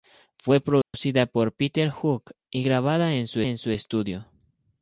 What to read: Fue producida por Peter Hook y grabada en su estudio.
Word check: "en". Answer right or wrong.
right